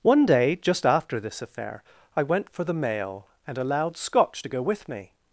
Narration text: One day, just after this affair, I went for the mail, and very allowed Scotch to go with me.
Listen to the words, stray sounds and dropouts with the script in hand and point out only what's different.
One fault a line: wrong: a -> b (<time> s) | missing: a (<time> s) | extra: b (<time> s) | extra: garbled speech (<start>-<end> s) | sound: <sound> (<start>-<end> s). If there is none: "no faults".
missing: very (3.6 s)